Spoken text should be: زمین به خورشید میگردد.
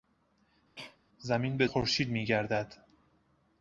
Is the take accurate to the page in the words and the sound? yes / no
no